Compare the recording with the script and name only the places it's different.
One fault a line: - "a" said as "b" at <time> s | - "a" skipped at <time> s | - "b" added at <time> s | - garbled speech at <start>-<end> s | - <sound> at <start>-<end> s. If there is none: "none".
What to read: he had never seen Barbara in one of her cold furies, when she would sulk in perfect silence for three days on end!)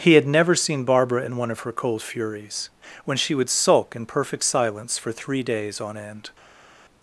none